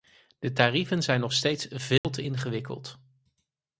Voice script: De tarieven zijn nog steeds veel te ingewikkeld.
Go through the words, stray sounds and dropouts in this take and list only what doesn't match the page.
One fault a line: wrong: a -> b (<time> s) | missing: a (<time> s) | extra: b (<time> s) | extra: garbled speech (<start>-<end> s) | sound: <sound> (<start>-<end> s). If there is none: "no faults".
sound: dropout (2.0-2.0 s)